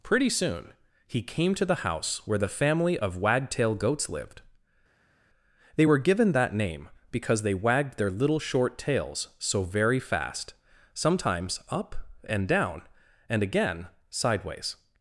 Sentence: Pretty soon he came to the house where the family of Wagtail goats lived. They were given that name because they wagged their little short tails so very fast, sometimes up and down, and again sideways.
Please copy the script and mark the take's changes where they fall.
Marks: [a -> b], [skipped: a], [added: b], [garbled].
Pretty soon he came to the house where the family of Wagtail goats lived. They were given that name because they wagged their little short tails so very fast, sometimes up and down, and again sideways.